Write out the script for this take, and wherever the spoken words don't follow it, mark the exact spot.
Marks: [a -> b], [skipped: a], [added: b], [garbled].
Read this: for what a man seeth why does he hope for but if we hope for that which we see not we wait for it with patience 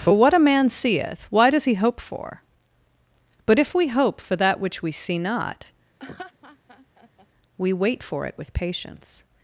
for what a man seeth why does he hope for but if we hope for that which we see not we wait for it with patience